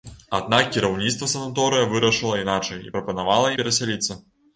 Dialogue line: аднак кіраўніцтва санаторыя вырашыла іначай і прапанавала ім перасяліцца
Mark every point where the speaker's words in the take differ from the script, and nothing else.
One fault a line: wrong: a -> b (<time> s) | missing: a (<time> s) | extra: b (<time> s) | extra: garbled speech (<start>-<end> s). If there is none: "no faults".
missing: ім (3.5 s)